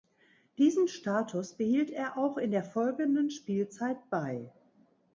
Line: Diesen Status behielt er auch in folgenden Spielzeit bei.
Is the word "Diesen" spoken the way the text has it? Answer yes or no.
yes